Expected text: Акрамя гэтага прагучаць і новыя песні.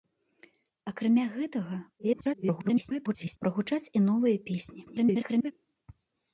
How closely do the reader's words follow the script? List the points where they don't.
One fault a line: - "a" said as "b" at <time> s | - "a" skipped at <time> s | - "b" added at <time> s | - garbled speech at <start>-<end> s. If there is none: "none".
- garbled speech at 2.0-3.4 s
- garbled speech at 4.9-5.5 s